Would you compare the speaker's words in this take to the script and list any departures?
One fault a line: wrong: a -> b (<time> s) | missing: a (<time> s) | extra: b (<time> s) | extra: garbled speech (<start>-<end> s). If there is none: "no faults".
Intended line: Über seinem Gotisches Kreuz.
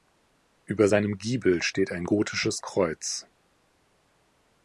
extra: Giebel steht ein (1.2 s)